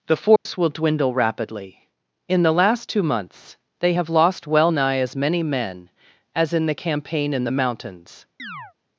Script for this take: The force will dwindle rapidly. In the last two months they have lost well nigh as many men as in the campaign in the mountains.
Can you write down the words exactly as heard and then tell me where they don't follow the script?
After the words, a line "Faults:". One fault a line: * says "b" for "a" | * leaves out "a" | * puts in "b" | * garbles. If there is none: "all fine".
The force will dwindle rapidly. In the last two months they have lost well nigh as many men as in the campaign in the mountains.
Faults:
all fine